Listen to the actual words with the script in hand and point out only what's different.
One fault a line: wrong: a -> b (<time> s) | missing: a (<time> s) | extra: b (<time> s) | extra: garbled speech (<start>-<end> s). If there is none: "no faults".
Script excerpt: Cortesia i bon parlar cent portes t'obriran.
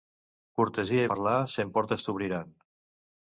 missing: bon (1.1 s)